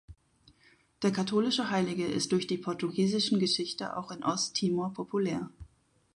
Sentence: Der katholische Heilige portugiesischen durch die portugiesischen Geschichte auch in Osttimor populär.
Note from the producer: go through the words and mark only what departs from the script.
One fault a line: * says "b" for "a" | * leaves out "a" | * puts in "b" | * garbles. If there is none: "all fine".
* says "ist" for "portugiesischen"